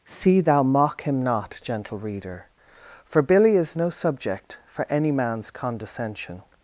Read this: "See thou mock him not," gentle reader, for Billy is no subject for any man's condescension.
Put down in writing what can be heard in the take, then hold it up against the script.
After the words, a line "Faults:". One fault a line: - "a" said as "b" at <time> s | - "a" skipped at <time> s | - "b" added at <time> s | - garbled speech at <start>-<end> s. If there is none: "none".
"See thou mock him not," gentle reader, for Billy is no subject for any man's condescension.
Faults:
none